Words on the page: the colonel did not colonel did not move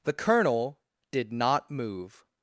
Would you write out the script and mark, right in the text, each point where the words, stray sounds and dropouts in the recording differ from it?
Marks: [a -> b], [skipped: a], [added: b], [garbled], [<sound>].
the colonel did not [skipped: colonel did not] move